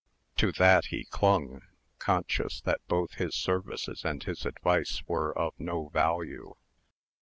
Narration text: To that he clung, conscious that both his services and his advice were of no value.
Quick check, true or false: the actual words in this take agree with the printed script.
true